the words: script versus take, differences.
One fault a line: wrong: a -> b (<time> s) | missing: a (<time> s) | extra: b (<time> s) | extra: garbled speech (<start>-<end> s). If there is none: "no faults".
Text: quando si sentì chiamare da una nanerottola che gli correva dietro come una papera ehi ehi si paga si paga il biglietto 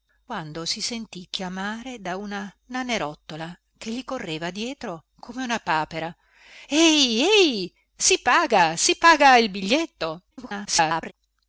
extra: garbled speech (10.3-11.1 s)